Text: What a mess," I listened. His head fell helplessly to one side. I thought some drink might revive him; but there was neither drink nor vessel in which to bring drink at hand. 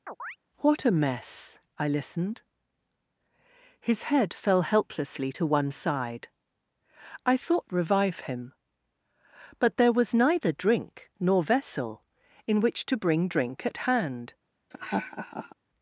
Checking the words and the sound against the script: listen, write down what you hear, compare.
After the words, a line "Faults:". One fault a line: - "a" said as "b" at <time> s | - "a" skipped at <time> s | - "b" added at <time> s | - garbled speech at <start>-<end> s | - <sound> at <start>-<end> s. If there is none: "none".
What a mess," I listened. His head fell helplessly to one side. I thought revive him; but there was neither drink nor vessel in which to bring drink at hand.
Faults:
- chirp at 0.1-0.4 s
- "some drink might" skipped at 7.7 s
- laugh at 14.7-15.6 s